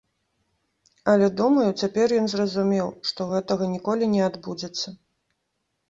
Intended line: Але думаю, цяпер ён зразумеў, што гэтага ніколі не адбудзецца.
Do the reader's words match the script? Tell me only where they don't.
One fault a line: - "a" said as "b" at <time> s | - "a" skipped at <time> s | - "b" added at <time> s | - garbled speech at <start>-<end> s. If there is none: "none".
none